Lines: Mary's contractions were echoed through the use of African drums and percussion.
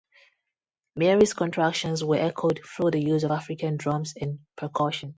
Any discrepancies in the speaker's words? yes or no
no